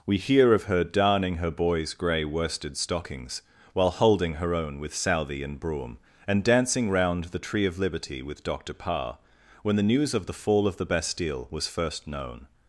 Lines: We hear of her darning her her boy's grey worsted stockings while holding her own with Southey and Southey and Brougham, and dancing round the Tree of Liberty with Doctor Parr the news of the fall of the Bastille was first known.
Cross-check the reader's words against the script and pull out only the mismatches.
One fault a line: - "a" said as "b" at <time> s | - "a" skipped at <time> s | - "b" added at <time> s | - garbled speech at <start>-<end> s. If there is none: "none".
- "her" skipped at 1.5 s
- "Southey and" skipped at 5.6 s
- "when" added at 9.6 s